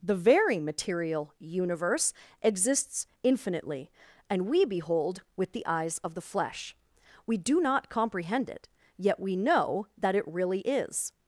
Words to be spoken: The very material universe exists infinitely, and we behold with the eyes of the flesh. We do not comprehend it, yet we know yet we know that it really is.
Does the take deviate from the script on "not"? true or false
false